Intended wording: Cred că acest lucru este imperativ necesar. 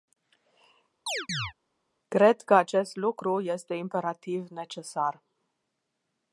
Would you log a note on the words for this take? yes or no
no